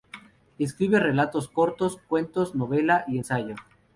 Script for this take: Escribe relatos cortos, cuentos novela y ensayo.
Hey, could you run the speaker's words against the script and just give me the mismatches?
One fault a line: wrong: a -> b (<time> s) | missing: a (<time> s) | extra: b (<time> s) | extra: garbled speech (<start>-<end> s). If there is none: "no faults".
no faults